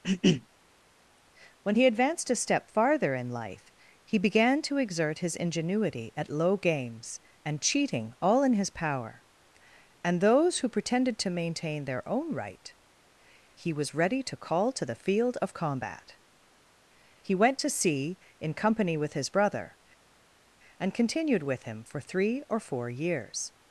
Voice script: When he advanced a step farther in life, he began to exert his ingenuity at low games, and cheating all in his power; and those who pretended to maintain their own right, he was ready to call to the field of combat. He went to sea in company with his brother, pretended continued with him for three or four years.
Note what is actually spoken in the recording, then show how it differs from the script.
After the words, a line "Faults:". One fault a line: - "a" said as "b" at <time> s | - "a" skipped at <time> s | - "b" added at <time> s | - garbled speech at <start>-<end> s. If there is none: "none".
When he advanced a step farther in life, he began to exert his ingenuity at low games, and cheating all in his power; and those who pretended to maintain their own right, he was ready to call to the field of combat. He went to sea in company with his brother, and continued with him for three or four years.
Faults:
- "pretended" said as "and" at 20.8 s